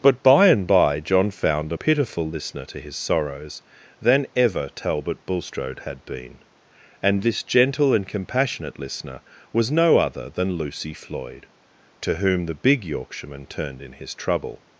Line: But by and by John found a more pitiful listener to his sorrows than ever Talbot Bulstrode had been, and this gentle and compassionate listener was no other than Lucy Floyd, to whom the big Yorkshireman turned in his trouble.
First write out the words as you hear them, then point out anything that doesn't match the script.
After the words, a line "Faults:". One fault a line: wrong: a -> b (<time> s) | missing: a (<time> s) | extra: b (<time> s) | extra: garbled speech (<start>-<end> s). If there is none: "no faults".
But by and by John found a pitiful listener to his sorrows than ever Talbot Bulstrode had been, and this gentle and compassionate listener was no other than Lucy Floyd, to whom the big Yorkshireman turned in his trouble.
Faults:
missing: more (1.8 s)